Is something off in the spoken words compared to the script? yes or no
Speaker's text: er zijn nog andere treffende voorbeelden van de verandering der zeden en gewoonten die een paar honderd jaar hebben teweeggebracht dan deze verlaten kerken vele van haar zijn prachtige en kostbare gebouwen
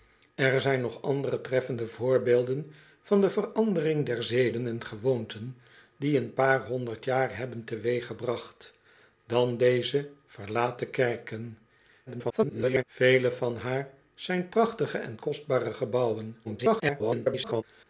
yes